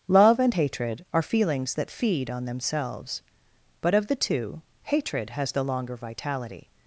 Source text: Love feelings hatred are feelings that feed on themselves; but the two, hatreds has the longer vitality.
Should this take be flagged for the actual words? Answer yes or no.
yes